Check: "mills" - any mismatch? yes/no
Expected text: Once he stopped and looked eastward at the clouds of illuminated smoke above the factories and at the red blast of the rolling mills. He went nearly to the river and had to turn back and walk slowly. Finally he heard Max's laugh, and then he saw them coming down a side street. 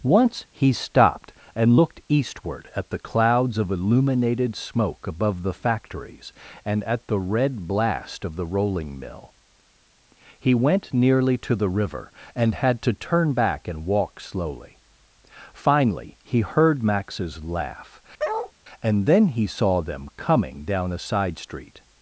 yes